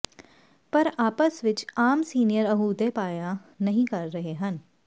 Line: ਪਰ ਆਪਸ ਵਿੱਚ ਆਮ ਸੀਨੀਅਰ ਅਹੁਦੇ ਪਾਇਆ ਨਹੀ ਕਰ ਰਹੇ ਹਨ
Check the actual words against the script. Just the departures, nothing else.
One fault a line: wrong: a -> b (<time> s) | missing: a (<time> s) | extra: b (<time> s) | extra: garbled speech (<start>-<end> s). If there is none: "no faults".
no faults